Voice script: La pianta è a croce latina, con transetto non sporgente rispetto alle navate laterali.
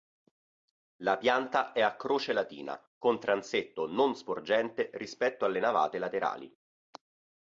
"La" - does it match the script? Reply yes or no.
yes